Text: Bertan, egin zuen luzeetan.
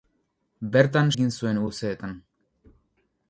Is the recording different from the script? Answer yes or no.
no